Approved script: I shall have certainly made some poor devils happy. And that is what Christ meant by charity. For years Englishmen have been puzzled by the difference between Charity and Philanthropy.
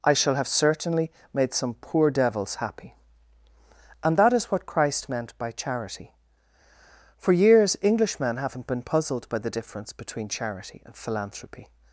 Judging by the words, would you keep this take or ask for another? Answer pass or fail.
fail